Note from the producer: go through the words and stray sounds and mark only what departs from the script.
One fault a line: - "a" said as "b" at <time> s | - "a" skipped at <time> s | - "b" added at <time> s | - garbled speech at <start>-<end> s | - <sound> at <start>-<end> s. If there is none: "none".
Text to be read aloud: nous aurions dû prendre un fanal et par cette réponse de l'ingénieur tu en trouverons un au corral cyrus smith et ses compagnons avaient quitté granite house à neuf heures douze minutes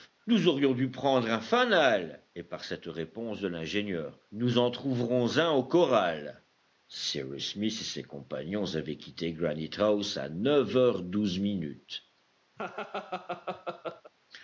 - "tu" said as "nous" at 4.3 s
- laugh at 12.6-14.1 s